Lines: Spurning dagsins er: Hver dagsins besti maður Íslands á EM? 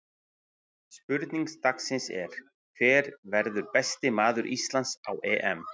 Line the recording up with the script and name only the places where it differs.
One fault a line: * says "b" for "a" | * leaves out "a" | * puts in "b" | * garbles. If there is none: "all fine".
* says "verður" for "dagsins"